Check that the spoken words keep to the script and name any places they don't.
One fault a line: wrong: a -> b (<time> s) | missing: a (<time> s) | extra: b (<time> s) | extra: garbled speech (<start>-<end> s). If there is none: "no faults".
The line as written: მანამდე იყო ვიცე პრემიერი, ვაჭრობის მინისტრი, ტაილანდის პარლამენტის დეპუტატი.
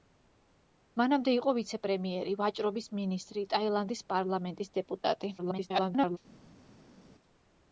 extra: garbled speech (5.4-6.2 s)